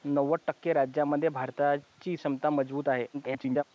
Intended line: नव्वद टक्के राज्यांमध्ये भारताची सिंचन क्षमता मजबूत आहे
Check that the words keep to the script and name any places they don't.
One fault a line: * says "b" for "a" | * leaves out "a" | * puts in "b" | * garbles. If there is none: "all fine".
* leaves out "सिंचन"
* garbles